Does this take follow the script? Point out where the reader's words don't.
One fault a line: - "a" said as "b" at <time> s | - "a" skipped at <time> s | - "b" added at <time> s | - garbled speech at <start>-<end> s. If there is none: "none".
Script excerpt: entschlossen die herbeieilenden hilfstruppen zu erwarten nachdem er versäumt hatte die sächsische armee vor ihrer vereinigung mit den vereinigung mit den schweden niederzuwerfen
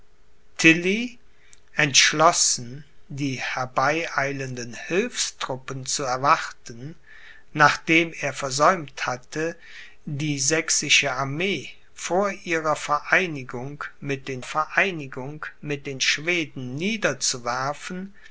none